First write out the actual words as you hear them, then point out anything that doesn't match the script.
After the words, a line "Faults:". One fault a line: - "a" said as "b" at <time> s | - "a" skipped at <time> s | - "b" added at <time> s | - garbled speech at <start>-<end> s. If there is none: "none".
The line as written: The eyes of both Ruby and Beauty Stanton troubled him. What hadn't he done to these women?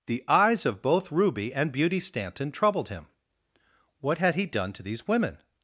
The eyes of both Ruby and Beauty Stanton troubled him. What had he done to these women?
Faults:
- "hadn't" said as "had" at 4.2 s